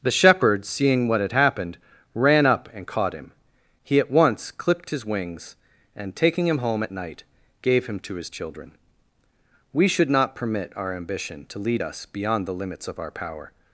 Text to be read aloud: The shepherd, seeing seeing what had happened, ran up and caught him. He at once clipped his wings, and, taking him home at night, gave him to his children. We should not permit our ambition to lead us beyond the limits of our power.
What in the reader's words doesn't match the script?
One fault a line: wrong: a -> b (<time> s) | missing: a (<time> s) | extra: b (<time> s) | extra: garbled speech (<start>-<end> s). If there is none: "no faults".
missing: seeing (1.1 s)